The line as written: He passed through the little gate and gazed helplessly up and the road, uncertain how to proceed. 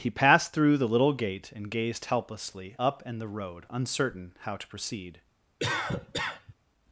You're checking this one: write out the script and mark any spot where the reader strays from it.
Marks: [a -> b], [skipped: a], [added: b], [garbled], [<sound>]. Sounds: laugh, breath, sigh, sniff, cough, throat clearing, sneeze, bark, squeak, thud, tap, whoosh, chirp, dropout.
He passed through the little gate and gazed helplessly up and the road, uncertain how to proceed. [cough]